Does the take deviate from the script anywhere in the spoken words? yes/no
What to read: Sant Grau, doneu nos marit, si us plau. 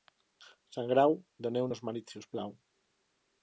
no